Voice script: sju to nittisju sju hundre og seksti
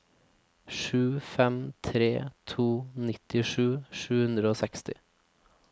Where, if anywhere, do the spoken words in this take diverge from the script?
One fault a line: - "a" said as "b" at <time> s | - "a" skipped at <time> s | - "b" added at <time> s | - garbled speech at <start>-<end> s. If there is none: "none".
- "fem tre" added at 1.3 s